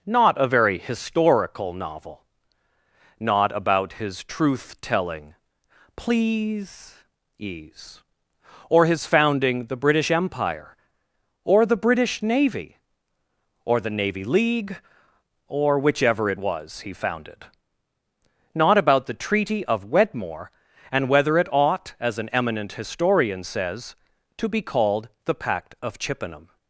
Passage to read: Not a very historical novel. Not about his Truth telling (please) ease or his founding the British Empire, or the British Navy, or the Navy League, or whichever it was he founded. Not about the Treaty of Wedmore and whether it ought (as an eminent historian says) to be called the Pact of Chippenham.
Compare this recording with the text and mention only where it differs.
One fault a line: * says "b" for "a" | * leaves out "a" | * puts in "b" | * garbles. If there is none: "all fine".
all fine